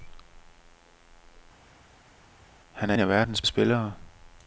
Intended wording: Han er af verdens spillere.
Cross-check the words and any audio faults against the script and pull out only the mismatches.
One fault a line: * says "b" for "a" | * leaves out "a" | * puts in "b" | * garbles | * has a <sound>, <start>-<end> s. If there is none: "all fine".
all fine